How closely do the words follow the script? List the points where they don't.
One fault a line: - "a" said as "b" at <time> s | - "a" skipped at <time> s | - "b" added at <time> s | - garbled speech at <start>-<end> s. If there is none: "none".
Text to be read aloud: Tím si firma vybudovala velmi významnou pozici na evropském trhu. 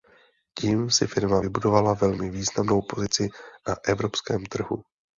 none